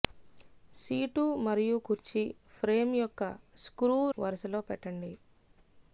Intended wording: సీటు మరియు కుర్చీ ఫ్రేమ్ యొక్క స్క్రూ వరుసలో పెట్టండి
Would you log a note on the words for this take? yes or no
no